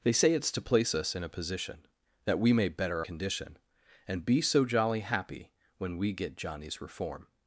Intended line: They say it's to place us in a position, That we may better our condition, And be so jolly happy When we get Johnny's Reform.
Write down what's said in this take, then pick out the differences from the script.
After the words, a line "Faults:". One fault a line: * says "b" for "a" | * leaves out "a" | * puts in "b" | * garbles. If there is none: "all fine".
They say it's to place us in a position, That we may better condition, And be so jolly happy When we get Johnny's Reform.
Faults:
* leaves out "our"